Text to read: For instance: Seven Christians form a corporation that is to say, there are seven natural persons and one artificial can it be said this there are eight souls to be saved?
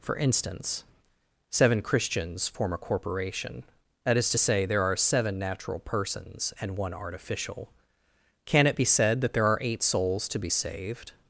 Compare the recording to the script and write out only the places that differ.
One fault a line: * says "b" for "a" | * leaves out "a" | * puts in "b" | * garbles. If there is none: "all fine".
* says "that" for "this"